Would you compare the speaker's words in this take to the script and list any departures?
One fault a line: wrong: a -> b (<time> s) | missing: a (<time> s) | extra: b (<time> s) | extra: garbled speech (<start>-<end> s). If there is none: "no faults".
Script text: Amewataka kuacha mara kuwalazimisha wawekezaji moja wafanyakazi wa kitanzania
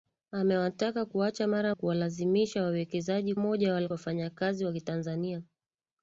no faults